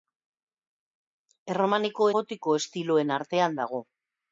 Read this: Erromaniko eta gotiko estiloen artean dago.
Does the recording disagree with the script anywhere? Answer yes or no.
yes